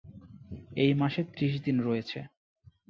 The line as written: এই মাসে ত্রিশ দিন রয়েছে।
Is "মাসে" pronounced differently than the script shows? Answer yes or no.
no